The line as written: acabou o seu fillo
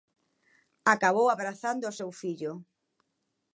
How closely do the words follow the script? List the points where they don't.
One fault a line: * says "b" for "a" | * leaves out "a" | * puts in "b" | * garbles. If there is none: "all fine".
* puts in "abrazando"